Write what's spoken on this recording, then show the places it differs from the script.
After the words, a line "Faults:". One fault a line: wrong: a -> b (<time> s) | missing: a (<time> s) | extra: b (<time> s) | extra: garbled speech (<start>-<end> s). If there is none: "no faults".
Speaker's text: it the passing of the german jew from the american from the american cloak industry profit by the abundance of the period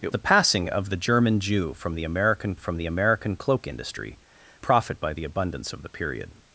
it the passing of the german jew from the american from the american cloak industry profit by the abundance of the period
Faults:
no faults